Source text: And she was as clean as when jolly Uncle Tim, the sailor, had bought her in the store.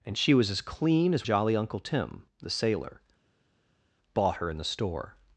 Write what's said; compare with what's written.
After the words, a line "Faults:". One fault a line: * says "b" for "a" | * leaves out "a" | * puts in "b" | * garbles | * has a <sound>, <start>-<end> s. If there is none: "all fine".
And she was as clean as jolly Uncle Tim, the sailor, bought her in the store.
Faults:
* leaves out "when"
* leaves out "had"